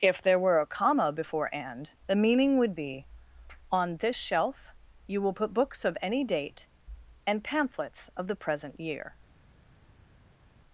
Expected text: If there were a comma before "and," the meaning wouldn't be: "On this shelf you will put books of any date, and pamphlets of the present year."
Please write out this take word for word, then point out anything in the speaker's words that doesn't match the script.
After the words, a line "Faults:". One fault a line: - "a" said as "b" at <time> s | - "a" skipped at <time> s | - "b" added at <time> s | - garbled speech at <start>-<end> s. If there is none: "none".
If there were a comma before "and," the meaning would be: "On this shelf you will put books of any date, and pamphlets of the present year."
Faults:
- "wouldn't" said as "would" at 2.6 s